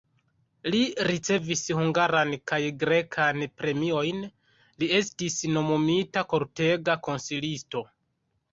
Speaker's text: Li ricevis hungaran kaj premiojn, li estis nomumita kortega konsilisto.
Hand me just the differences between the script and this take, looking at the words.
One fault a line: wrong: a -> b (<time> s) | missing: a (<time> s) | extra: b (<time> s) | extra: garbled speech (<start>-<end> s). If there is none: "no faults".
extra: grekan (2.8 s)